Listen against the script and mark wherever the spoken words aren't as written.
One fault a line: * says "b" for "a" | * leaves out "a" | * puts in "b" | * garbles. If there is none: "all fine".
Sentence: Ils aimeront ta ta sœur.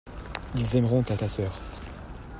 all fine